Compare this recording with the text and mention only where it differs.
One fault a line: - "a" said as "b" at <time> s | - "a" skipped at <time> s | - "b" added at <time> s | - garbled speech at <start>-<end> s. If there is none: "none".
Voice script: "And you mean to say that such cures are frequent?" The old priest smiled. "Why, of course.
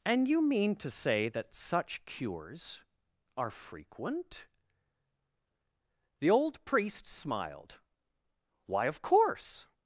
none